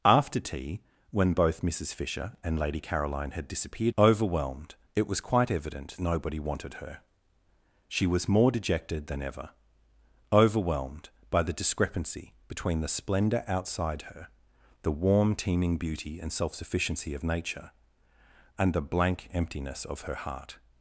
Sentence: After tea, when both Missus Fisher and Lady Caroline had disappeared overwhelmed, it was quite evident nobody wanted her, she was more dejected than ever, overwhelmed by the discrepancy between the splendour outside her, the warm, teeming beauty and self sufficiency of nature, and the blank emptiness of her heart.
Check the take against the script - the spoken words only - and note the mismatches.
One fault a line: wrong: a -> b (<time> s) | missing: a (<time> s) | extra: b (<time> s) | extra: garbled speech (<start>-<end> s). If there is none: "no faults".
no faults